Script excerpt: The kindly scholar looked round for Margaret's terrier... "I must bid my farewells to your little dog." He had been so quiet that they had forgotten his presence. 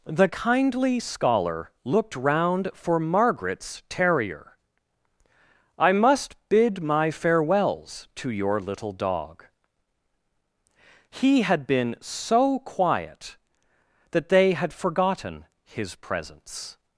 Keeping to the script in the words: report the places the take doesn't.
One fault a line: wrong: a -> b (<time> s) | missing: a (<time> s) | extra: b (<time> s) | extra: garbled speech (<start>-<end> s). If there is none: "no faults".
no faults